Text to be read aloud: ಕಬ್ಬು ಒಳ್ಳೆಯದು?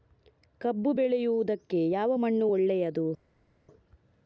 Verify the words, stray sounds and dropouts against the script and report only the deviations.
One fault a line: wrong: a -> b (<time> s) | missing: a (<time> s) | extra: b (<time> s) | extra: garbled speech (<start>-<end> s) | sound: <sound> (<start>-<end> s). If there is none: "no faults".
extra: ಬೆಳೆಯುವುದಕ್ಕೆ ಯಾವ ಮಣ್ಣು (0.9 s)